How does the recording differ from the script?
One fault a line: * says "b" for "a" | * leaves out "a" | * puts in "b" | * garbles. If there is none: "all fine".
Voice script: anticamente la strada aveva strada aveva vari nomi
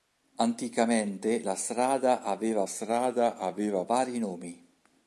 all fine